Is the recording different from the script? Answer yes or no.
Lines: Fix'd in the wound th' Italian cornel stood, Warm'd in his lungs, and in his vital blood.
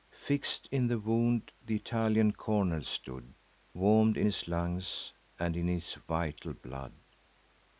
no